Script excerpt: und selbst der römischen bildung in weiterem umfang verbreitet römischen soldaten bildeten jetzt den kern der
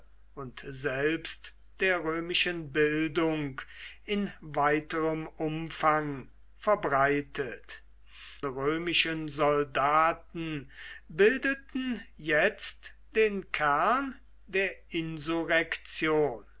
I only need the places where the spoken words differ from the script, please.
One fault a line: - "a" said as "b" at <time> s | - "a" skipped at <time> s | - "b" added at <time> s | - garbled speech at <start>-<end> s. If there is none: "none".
none